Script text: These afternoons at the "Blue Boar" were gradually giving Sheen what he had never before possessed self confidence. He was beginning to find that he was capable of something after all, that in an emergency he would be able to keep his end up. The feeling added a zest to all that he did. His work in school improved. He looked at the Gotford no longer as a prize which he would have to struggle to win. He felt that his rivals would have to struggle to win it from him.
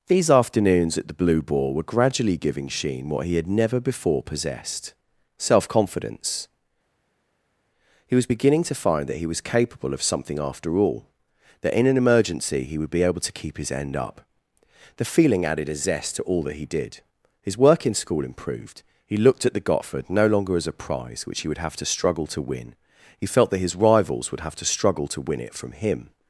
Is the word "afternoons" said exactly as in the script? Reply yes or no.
yes